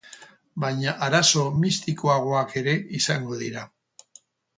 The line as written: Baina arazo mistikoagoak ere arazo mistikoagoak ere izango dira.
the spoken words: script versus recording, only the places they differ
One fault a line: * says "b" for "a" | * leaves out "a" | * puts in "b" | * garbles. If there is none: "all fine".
* leaves out "arazo mistikoagoak ere"